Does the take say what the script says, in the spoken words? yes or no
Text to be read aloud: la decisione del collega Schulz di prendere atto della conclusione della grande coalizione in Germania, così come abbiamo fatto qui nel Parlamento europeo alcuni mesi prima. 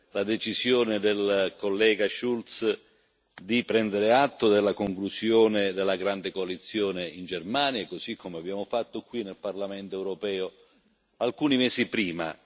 yes